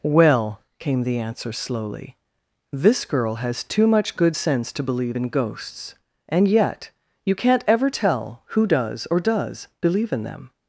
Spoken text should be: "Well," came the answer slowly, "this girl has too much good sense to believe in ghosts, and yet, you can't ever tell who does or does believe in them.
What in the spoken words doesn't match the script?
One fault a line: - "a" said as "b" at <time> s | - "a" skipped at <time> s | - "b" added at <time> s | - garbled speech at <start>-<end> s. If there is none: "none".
none